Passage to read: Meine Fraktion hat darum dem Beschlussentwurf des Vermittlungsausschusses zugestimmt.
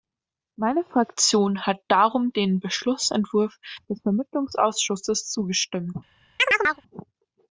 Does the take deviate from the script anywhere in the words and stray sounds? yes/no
yes